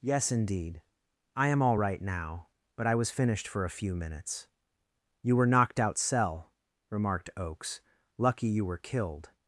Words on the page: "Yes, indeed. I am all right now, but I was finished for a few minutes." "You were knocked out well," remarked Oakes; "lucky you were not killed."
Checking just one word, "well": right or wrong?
wrong